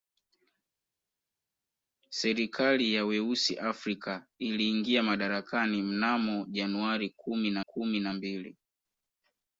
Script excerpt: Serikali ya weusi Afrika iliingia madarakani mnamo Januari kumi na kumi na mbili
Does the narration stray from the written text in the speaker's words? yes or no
no